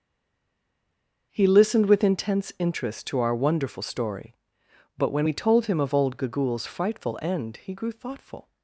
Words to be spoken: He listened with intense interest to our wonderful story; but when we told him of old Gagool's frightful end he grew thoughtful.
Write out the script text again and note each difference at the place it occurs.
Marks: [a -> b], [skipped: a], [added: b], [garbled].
He listened with intense interest to our wonderful story; but when we told him of old Gagool's frightful end he grew thoughtful.